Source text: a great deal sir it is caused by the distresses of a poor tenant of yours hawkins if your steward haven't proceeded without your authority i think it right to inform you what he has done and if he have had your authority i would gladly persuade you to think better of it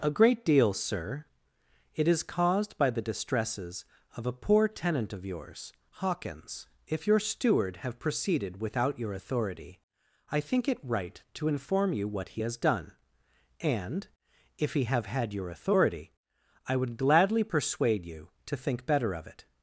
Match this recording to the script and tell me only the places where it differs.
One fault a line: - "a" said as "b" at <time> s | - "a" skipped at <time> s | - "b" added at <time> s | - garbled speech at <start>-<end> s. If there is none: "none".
- "haven't" said as "have" at 7.8 s